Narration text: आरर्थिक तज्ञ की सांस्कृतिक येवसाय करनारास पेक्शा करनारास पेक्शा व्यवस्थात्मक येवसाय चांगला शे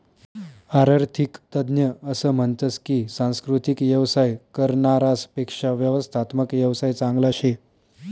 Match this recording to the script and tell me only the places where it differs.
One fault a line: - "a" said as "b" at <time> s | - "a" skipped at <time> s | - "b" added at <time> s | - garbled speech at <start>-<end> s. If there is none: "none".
- "असं म्हनतस" added at 2.0 s
- "करनारास पेक्शा" skipped at 5.7 s